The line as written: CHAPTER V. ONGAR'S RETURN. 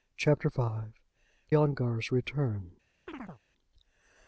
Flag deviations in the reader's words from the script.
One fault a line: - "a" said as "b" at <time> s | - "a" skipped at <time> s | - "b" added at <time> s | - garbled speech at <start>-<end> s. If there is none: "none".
none